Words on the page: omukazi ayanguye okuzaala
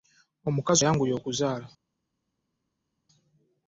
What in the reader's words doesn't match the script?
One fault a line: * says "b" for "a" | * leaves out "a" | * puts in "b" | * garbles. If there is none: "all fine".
all fine